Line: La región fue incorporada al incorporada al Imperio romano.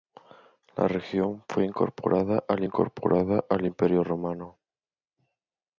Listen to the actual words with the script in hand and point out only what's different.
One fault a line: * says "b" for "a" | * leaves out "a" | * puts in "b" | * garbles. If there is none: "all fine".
all fine